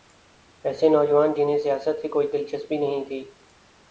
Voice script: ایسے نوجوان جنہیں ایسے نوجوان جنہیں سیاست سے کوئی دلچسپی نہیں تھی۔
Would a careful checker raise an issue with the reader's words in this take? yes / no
yes